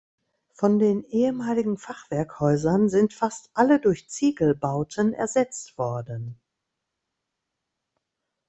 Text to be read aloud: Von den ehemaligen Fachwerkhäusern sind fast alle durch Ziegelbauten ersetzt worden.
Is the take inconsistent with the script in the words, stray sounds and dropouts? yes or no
no